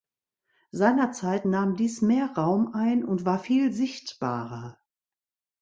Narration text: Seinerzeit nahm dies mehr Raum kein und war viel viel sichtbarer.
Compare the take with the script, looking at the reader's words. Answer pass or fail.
fail